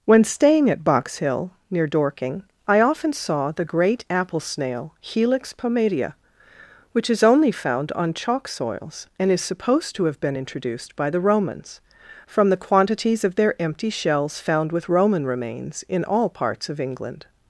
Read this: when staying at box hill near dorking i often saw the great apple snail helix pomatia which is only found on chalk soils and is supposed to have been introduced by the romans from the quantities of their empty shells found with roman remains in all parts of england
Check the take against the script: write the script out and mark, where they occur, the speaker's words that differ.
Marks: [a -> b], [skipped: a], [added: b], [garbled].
when staying at box hill near dorking i often saw the great apple snail helix pomatia which is only found on chalk soils and is supposed to have been introduced by the romans from the quantities of their empty shells found with roman remains in all parts of england